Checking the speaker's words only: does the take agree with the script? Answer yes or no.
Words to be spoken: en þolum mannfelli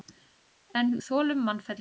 yes